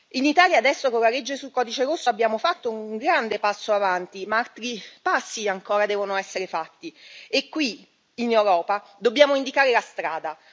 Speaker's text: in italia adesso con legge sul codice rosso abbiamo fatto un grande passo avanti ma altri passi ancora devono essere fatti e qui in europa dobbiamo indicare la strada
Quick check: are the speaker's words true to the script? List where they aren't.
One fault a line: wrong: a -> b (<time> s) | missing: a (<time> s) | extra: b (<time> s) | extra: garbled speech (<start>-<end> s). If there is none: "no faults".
extra: la (1.0 s)